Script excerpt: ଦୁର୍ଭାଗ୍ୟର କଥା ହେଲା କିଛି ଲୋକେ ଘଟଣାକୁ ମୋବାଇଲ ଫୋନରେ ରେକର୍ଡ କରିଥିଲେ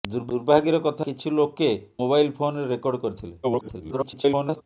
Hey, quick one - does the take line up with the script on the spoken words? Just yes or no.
no